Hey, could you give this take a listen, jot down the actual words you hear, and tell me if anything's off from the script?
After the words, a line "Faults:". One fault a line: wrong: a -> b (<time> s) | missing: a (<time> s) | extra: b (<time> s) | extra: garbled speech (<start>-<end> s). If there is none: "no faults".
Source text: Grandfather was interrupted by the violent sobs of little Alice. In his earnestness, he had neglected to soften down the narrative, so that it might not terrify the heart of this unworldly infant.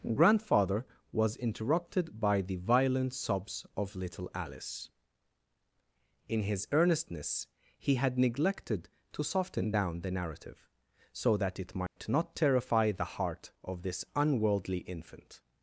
Grandfather was interrupted by the violent sobs of little Alice. In his earnestness, he had neglected to soften down the narrative, so that it might not terrify the heart of this unworldly infant.
Faults:
no faults